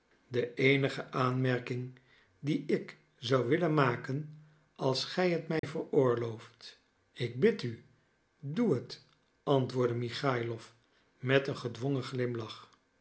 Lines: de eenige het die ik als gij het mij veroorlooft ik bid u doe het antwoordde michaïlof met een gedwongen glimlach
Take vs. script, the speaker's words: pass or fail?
fail